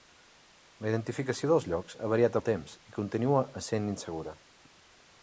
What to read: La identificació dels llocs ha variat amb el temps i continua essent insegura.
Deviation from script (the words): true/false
true